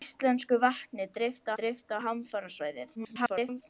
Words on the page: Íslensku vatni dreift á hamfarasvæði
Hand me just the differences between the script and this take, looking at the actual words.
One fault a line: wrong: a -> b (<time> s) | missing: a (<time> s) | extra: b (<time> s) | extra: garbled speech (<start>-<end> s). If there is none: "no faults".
extra: dreift (1.6 s)
extra: garbled speech (2.9-3.6 s)